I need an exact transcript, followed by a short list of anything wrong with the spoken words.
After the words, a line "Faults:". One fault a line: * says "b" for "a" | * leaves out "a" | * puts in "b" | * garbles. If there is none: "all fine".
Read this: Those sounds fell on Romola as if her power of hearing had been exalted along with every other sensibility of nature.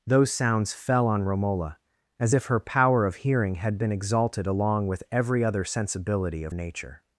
Those sounds fell on Romola as if her power of hearing had been exalted along with every other sensibility of nature.
Faults:
all fine